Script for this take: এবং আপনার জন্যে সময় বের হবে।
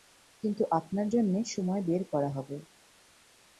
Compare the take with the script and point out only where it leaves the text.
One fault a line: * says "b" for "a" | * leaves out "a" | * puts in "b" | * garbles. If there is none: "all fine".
* says "কিন্তু" for "এবং"
* puts in "করা"